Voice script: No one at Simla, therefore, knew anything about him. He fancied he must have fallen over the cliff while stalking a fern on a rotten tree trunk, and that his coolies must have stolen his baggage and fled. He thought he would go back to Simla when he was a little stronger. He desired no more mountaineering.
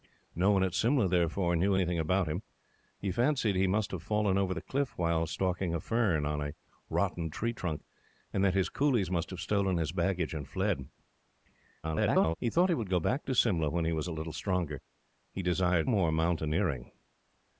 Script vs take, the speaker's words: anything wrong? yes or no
yes